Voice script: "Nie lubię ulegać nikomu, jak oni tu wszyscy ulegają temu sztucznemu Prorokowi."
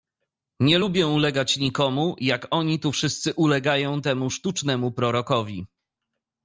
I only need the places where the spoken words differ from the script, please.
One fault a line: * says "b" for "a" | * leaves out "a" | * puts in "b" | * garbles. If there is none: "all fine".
all fine